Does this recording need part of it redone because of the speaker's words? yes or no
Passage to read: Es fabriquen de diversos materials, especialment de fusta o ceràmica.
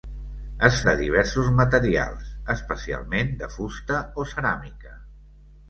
yes